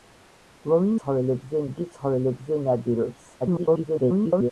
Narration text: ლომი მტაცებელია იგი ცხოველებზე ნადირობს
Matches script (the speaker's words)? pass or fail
fail